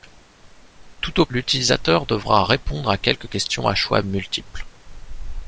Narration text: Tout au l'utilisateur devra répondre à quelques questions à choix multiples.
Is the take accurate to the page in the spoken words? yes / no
yes